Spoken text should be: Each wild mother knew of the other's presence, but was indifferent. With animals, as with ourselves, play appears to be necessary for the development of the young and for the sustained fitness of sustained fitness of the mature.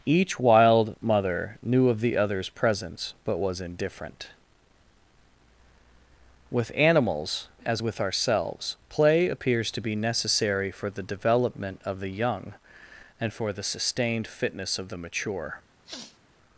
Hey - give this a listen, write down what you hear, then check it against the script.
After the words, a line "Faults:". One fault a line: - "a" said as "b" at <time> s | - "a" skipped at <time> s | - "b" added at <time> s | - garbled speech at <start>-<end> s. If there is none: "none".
Each wild mother knew of the other's presence, but was indifferent. With animals, as with ourselves, play appears to be necessary for the development of the young and for the sustained fitness of the mature.
Faults:
- "sustained fitness of" skipped at 14.9 s